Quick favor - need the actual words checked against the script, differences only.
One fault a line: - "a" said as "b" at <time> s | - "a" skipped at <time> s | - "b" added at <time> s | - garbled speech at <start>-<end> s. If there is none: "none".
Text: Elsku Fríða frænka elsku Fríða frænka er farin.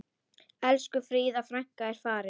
- "elsku Fríða frænka" skipped at 1.9 s